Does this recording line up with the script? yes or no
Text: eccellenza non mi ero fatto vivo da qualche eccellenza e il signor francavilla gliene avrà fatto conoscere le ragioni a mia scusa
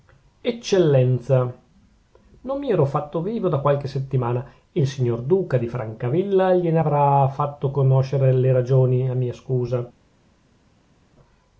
no